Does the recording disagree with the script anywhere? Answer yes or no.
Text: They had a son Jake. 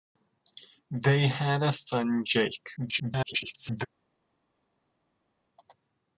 yes